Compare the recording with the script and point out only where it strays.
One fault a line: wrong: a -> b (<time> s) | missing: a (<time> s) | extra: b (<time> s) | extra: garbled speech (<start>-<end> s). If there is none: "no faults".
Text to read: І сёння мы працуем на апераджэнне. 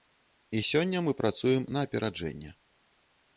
no faults